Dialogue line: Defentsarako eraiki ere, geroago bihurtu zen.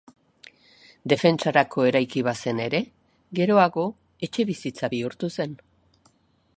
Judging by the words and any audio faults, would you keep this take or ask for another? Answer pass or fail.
fail